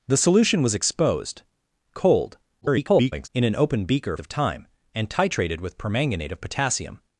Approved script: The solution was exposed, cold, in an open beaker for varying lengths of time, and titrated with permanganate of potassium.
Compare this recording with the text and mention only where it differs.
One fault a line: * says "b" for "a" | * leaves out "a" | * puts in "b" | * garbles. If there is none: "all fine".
* garbles
* leaves out "for varying lengths"